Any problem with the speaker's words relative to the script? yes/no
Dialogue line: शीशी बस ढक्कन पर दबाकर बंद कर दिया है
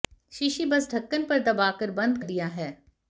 yes